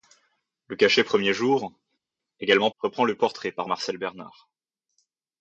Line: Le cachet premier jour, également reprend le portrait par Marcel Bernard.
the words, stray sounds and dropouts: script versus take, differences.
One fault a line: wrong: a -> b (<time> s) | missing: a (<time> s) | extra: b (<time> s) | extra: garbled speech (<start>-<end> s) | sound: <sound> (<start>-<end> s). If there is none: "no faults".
no faults